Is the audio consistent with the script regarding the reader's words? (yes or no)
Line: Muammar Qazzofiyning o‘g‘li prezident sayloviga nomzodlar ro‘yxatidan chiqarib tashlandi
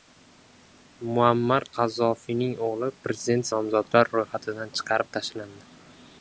no